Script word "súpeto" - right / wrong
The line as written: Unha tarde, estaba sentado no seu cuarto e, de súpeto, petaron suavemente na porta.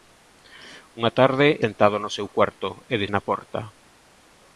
wrong